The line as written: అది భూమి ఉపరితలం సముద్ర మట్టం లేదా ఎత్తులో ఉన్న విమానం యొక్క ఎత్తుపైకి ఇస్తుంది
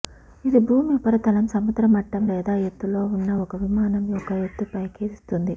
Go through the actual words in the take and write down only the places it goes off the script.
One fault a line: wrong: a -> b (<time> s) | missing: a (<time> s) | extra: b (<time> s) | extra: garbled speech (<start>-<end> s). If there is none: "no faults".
wrong: అది -> ఇది (0.5 s)
extra: ఒక (3.4 s)